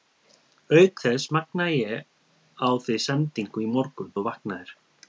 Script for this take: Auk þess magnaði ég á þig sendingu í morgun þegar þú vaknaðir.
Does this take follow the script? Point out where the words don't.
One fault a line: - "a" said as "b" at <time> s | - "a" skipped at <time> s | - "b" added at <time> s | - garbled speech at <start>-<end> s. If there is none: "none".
- "þegar" skipped at 4.1 s